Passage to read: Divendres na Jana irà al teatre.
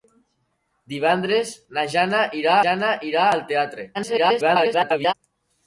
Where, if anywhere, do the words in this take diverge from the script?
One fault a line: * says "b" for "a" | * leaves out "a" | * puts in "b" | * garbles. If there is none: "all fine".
* puts in "Jana irà"
* garbles